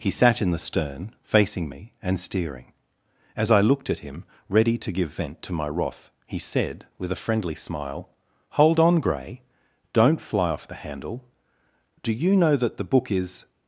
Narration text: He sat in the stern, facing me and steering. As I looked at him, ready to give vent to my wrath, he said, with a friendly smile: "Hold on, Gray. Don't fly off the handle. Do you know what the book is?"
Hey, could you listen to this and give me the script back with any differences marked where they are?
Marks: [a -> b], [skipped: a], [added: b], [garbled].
He sat in the stern, facing me and steering. As I looked at him, ready to give vent to my wrath, he said, with a friendly smile: "Hold on, Gray. Don't fly off the handle. Do you know [what -> that] the book is?"